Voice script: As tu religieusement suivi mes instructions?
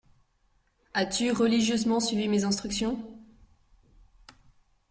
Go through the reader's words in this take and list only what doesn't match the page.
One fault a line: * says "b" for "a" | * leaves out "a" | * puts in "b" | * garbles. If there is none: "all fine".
all fine